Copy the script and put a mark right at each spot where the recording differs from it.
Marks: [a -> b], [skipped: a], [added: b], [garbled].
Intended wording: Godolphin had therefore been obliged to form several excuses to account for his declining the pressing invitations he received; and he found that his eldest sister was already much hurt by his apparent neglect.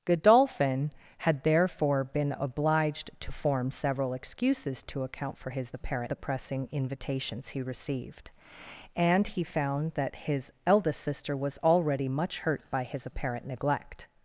Godolphin had therefore been obliged to form several excuses to account for his [declining -> apparent] the pressing invitations he received; and he found that his eldest sister was already much hurt by his apparent neglect.